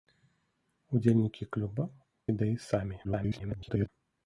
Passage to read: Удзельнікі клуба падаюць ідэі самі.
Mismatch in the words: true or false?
true